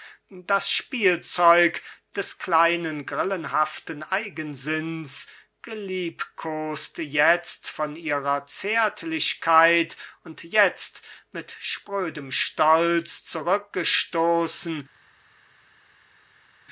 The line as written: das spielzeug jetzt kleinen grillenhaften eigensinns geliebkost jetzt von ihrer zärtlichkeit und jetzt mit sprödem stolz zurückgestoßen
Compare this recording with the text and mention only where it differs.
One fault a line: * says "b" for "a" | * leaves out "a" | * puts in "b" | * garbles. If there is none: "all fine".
* says "des" for "jetzt"